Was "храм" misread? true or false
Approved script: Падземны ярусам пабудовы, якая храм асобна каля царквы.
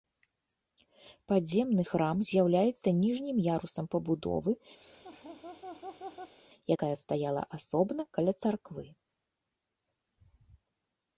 true